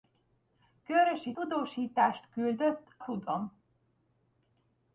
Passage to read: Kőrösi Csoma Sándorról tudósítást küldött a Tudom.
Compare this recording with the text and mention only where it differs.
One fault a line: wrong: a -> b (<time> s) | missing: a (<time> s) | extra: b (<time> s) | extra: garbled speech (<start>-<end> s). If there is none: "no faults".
missing: Csoma Sándorról (1.4 s)
missing: a (3.0 s)